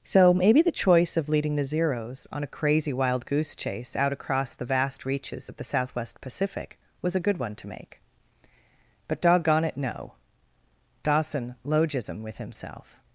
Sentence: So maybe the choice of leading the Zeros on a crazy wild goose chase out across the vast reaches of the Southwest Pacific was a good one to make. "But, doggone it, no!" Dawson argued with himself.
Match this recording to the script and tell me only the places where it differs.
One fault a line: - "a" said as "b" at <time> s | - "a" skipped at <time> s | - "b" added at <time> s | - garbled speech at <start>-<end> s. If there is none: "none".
- "argued" said as "logism" at 11.7 s